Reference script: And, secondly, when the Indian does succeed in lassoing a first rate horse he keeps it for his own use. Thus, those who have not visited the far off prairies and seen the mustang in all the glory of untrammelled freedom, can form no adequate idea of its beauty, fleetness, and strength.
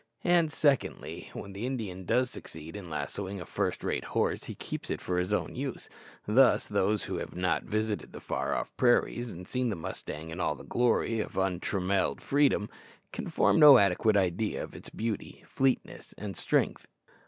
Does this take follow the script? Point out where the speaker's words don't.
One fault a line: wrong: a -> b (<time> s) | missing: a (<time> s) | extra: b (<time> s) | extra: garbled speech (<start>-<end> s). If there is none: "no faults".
no faults